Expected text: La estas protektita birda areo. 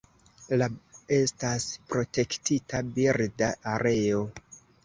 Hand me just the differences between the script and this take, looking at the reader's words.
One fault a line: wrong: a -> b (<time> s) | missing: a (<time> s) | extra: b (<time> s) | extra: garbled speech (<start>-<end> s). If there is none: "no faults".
no faults